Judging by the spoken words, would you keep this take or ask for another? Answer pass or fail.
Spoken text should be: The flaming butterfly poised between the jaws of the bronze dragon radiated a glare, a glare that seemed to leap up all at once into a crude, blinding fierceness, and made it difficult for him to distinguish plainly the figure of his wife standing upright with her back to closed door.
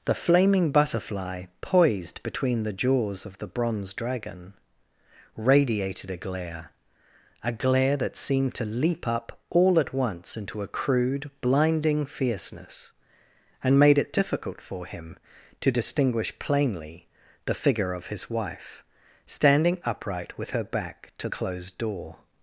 pass